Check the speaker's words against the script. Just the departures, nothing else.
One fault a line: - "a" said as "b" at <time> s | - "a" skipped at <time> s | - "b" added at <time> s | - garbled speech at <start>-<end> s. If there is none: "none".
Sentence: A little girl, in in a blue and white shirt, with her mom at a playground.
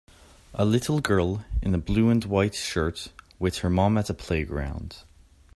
- "in" skipped at 1.8 s